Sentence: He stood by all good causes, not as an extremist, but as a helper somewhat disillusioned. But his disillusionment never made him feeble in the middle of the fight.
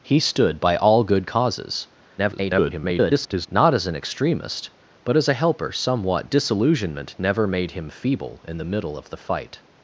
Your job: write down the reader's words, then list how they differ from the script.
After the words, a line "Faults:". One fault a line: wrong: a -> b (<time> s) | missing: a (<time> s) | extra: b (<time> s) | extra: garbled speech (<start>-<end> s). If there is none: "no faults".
He stood by all good causes, [garbled] not as an extremist, but as a helper somewhat disillusionment never made him feeble in the middle of the fight.
Faults:
extra: garbled speech (2.2-3.5 s)
missing: disillusioned But his (6.3 s)